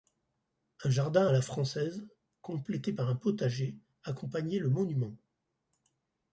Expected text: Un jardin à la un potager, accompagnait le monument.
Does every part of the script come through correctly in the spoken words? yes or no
no